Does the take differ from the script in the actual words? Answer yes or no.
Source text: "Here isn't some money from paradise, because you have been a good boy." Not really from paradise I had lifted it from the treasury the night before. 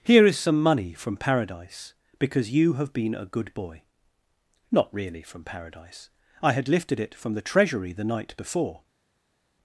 yes